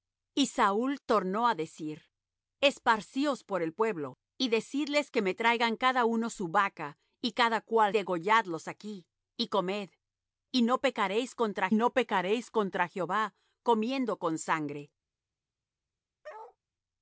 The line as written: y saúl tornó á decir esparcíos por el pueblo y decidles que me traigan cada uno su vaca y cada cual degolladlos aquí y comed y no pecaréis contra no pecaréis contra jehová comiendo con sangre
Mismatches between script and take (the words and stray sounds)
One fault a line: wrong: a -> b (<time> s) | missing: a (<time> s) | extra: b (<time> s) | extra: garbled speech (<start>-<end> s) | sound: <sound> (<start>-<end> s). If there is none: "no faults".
sound: bark (16.2-16.6 s)